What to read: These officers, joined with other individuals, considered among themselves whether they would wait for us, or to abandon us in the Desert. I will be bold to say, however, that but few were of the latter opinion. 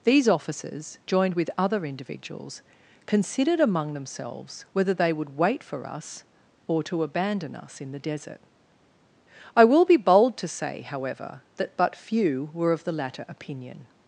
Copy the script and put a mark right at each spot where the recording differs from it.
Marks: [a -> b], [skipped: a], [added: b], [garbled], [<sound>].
These officers, joined with other individuals, considered among themselves whether they would wait for us, or to abandon us in the Desert. I will be bold to say, however, that but few were of the latter opinion.